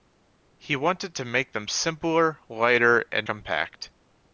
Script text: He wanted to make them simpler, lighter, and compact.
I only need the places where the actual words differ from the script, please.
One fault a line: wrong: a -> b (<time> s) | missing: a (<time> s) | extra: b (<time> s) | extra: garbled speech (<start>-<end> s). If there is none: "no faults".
no faults